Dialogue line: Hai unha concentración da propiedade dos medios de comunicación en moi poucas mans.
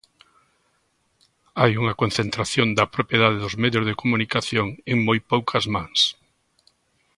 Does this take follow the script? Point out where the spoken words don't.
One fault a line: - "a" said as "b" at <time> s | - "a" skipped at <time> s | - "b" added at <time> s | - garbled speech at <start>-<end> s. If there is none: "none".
none